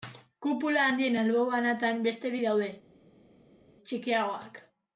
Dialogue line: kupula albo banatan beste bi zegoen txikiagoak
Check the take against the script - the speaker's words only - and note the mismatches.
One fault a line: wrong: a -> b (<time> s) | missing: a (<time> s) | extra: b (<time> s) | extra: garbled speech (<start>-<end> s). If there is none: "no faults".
extra: handien (0.9 s)
wrong: zegoen -> daude (2.5 s)